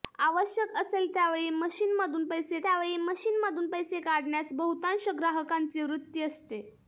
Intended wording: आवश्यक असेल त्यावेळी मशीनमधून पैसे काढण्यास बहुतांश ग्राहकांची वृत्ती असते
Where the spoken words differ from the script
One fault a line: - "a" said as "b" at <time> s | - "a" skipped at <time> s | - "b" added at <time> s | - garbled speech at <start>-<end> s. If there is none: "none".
- "त्यावेळी मशीनमधून पैसे" added at 2.6 s